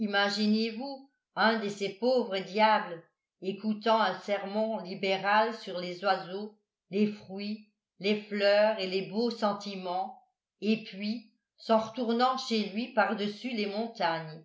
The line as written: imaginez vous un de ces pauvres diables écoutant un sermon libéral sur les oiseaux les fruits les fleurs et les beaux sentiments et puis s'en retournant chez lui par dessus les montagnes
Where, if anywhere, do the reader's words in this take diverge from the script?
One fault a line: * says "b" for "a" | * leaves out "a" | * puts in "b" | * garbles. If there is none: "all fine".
all fine